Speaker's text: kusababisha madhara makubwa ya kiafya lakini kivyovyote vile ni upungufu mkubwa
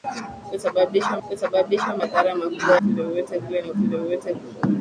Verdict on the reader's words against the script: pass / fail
fail